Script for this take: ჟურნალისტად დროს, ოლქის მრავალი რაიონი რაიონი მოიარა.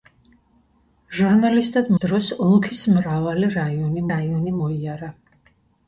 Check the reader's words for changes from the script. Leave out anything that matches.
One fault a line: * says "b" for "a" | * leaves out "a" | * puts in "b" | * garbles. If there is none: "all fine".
all fine